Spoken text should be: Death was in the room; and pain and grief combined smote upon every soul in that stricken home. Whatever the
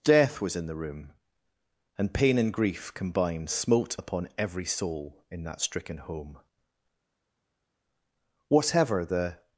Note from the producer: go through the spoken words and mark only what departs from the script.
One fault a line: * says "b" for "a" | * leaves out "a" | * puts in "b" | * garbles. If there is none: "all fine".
all fine